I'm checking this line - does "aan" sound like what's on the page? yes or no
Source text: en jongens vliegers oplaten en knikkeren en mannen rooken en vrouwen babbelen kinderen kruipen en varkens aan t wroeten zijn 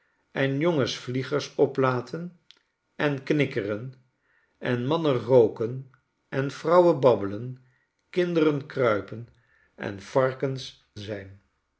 no